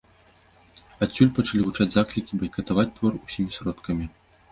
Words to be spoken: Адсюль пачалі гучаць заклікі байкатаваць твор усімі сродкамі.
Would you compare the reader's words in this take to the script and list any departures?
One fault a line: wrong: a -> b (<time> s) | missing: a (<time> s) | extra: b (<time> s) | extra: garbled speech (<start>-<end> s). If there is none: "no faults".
no faults